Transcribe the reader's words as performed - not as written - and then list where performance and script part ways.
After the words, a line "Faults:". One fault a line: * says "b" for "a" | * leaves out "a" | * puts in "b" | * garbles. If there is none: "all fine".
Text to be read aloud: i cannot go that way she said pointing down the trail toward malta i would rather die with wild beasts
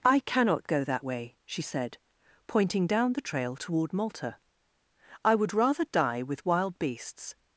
i cannot go that way she said pointing down the trail toward malta i would rather die with wild beasts
Faults:
all fine